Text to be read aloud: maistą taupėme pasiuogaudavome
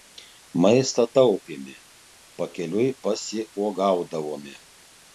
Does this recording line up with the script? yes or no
no